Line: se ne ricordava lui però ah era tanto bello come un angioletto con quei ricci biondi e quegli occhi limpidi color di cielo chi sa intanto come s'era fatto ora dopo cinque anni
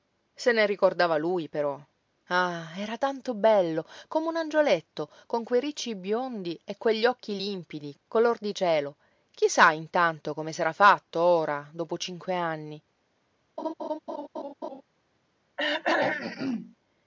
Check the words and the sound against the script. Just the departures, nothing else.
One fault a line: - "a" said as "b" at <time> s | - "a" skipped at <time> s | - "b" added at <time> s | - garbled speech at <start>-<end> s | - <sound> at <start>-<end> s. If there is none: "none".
- laugh at 13.6-14.8 s
- throat clearing at 15.6-16.8 s